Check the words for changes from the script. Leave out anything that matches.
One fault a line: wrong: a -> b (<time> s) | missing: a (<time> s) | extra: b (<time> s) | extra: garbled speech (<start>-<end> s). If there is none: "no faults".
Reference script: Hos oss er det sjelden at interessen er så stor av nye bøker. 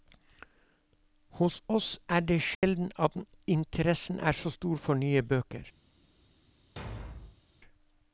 wrong: av -> for (4.7 s)